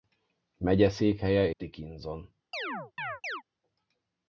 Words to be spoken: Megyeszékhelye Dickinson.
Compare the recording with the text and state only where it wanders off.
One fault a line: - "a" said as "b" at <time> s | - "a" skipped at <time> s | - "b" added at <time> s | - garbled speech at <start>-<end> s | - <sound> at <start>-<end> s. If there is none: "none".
- chirp at 2.5-3.4 s